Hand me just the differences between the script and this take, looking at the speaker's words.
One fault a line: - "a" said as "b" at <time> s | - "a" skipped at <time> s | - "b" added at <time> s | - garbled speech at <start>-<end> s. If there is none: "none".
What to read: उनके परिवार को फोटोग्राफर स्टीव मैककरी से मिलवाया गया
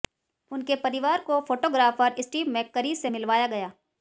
none